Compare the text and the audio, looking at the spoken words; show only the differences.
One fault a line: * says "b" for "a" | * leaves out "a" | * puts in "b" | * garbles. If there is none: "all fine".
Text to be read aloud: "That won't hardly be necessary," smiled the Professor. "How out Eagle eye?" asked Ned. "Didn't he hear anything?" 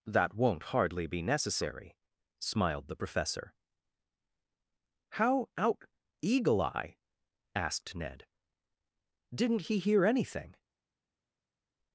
all fine